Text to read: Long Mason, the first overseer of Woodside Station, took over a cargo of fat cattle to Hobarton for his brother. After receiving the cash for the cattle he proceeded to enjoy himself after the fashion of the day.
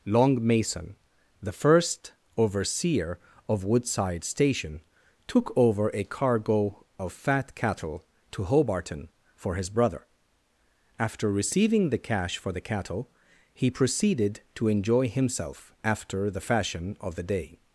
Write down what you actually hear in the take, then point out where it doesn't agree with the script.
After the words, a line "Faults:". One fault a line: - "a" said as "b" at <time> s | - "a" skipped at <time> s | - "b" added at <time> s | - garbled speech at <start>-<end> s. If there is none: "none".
Long Mason, the first overseer of Woodside Station, took over a cargo of fat cattle to Hobarton for his brother. After receiving the cash for the cattle he proceeded to enjoy himself after the fashion of the day.
Faults:
none